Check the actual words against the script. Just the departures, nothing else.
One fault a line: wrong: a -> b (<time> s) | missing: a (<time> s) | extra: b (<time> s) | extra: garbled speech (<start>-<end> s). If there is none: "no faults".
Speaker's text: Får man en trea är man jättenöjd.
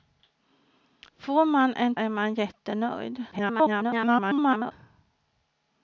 missing: trea (1.9 s)
extra: garbled speech (3.3-4.7 s)